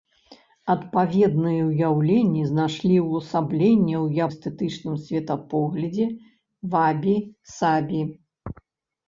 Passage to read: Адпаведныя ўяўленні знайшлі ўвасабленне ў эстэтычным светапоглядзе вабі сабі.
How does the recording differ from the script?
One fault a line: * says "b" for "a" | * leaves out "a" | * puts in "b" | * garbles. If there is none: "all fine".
all fine